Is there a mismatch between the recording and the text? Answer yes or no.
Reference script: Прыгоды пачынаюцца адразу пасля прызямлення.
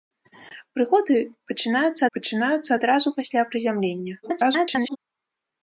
yes